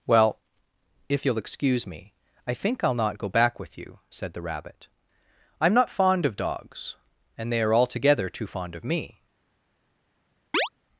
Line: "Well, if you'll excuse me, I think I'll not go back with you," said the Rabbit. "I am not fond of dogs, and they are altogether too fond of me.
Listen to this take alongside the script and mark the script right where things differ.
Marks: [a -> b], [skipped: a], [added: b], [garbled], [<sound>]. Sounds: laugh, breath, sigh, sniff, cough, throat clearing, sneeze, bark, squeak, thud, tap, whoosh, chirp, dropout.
"Well, if you'll excuse me, I think I'll not go back with you," said the Rabbit. "I am not fond of dogs, and they are altogether too fond of me. [chirp]